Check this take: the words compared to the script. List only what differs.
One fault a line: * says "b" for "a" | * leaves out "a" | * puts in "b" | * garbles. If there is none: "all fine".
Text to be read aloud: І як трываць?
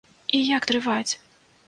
all fine